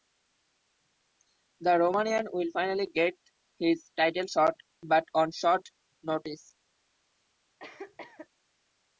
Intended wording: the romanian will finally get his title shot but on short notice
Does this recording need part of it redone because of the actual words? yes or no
no